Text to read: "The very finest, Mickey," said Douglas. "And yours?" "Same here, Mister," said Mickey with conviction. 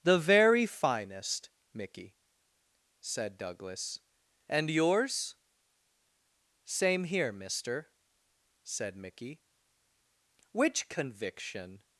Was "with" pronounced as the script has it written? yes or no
no